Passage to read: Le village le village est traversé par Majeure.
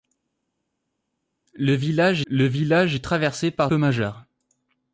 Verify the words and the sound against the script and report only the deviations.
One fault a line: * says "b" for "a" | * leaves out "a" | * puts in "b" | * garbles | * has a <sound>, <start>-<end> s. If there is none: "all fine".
all fine